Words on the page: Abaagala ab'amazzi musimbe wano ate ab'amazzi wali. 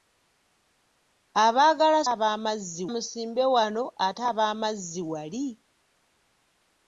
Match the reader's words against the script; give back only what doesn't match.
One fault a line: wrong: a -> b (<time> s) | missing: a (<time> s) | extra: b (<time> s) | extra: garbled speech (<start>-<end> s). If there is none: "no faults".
no faults